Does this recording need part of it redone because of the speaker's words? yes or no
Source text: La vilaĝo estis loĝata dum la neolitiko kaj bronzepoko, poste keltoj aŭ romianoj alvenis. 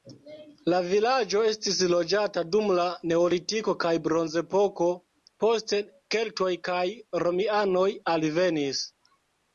yes